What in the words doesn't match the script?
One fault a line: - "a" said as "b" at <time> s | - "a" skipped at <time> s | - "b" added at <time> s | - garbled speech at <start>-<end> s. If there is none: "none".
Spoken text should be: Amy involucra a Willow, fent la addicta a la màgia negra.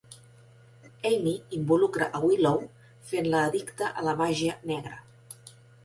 none